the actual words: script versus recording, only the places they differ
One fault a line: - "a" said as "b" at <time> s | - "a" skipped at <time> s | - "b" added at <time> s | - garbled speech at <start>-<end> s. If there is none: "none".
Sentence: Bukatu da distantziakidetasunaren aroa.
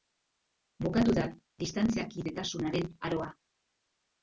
none